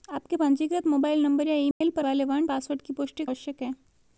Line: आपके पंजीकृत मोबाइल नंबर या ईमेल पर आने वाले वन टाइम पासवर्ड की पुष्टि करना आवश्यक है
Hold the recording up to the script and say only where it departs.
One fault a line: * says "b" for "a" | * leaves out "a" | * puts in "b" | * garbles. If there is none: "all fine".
* leaves out "आने"
* leaves out "टाइम"
* leaves out "करना"